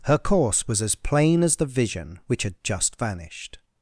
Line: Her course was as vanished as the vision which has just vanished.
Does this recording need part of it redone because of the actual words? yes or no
yes